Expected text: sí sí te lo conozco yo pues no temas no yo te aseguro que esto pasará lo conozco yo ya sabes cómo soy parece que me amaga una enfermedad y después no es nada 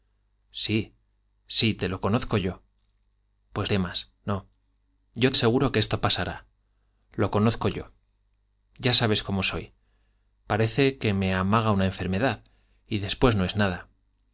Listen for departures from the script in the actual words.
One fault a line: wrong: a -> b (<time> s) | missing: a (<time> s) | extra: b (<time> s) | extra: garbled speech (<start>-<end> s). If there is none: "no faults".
missing: no (3.7 s)
missing: te (5.3 s)